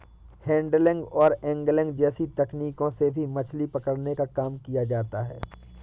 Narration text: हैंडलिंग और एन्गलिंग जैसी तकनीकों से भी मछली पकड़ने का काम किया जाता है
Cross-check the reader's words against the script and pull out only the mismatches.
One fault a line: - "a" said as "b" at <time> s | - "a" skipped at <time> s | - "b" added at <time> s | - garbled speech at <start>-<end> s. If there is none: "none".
none